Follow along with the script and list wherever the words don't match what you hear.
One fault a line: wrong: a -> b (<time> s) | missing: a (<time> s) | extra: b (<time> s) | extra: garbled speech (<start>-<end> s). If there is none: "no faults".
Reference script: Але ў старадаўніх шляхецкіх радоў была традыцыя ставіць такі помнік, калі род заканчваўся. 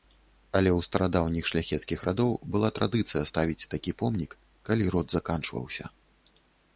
no faults